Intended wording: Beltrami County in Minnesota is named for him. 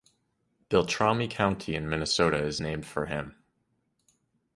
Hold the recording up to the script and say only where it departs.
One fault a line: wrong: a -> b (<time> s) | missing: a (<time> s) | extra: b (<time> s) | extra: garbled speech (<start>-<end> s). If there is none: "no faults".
no faults